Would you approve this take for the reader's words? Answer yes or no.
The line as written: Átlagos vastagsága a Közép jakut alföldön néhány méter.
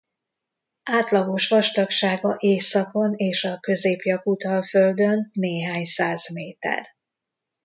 no